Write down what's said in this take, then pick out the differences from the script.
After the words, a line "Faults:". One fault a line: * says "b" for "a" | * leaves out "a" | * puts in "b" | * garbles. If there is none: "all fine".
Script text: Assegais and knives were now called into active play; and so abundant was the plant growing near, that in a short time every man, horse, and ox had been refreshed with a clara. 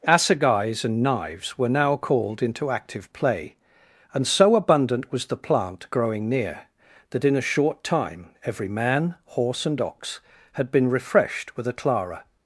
Assegais and knives were now called into active play; and so abundant was the plant growing near, that in a short time every man, horse, and ox had been refreshed with a clara.
Faults:
all fine